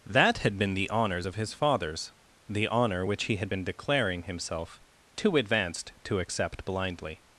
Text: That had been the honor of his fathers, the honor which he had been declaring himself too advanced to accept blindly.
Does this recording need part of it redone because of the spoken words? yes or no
yes